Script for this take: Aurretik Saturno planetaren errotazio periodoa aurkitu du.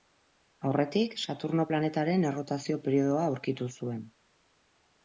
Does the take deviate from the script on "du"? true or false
true